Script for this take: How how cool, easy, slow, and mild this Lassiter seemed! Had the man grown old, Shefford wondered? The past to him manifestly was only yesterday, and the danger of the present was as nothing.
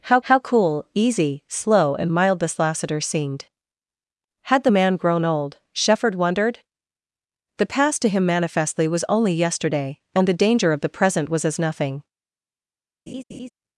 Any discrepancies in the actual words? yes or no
no